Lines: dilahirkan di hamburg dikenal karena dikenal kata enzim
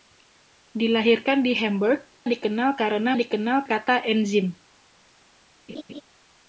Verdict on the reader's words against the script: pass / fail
pass